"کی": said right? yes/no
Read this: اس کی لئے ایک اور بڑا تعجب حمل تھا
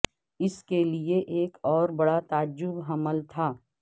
no